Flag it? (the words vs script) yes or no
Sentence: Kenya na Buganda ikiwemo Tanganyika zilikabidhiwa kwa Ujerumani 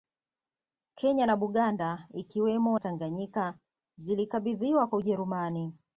no